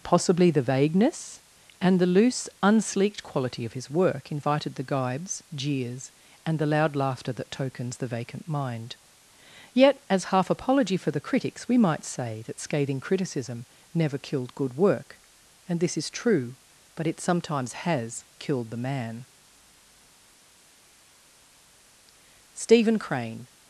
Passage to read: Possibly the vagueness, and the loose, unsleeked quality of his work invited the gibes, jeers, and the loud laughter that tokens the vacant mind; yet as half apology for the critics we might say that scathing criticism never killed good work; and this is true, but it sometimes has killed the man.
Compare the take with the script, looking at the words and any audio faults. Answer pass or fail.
fail